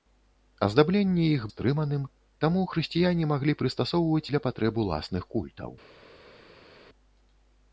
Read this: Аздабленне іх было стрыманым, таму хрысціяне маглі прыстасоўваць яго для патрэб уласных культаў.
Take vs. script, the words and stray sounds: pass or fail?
fail